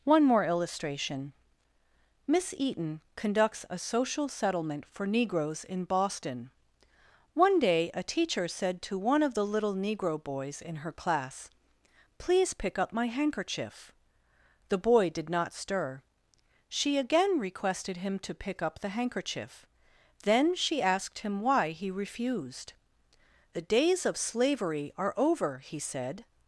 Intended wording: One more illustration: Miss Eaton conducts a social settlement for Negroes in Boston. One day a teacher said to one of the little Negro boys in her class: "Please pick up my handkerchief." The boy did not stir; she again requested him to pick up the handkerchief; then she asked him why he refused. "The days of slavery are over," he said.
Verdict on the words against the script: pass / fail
pass